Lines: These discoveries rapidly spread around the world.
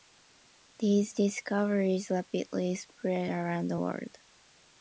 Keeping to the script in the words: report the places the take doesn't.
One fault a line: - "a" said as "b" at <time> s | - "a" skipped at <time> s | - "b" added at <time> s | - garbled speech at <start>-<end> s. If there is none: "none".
none